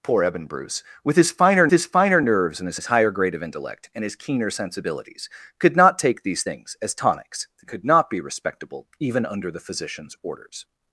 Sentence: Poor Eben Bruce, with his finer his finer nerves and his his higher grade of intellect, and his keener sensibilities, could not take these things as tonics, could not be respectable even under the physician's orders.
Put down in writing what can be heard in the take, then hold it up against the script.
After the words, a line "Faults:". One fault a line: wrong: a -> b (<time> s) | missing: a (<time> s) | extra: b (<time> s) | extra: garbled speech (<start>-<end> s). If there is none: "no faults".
Poor Eben Bruce, with his finer his finer nerves and his his higher grade of intellect, and his keener sensibilities, could not take these things as tonics, could not be respectable even under the physician's orders.
Faults:
no faults